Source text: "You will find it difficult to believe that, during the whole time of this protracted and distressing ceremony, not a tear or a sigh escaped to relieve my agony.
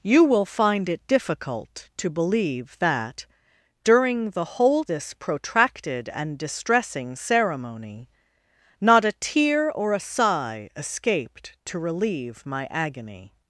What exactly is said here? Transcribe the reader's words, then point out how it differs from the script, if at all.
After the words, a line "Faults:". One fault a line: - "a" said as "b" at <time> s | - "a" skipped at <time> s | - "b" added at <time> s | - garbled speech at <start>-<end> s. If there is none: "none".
"You will find it difficult to believe that, during the whole this protracted and distressing ceremony, not a tear or a sigh escaped to relieve my agony.
Faults:
- "time of" skipped at 4.8 s